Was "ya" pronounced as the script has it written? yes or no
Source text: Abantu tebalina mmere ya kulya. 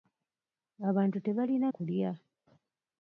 no